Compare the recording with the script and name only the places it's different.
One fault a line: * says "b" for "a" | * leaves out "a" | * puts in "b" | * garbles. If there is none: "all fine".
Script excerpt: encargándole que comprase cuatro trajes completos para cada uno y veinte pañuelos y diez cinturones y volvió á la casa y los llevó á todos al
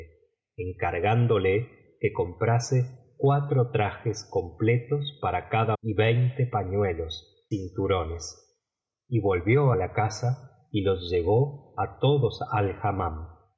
* leaves out "uno"
* leaves out "y diez"